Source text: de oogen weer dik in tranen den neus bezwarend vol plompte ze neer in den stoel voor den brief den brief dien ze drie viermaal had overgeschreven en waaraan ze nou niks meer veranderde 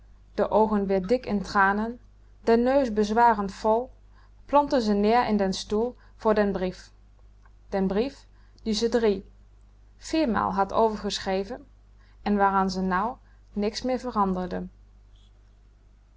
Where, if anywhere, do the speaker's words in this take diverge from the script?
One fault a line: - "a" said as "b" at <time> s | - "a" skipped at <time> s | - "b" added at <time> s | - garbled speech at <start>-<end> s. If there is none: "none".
none